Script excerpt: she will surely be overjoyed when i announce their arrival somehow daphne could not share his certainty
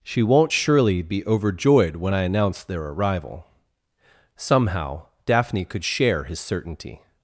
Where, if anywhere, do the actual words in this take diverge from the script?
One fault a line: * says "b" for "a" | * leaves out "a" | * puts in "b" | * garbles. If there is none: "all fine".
* says "won't" for "will"
* leaves out "not"